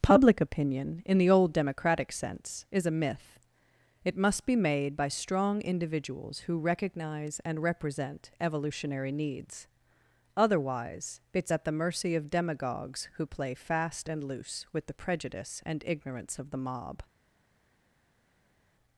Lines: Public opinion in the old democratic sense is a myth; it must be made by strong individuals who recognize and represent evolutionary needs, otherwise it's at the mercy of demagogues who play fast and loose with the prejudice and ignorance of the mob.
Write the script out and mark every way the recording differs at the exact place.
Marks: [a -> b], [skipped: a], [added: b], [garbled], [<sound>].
Public opinion in the old democratic sense is a myth; it must be made by strong individuals who recognize and represent evolutionary needs, otherwise it's at the mercy of demagogues who play fast and loose with the prejudice and ignorance of the mob.